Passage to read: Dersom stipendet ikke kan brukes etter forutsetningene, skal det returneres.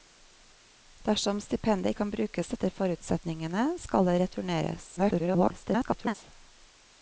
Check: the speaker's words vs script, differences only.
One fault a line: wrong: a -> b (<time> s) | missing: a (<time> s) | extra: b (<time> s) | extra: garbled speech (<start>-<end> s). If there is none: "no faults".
missing: ikke (1.9 s)
extra: garbled speech (5.0-6.1 s)